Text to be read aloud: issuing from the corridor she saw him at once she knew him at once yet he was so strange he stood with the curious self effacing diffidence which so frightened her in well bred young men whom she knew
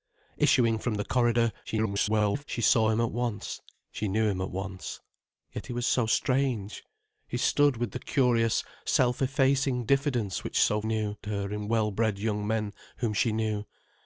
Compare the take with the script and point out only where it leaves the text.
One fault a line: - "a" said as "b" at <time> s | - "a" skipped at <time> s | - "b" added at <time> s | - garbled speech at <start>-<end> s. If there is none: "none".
- garbled speech at 1.6-2.4 s
- "frightened" said as "knew" at 10.8 s